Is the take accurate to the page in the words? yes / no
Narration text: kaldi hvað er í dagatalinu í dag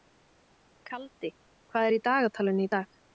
yes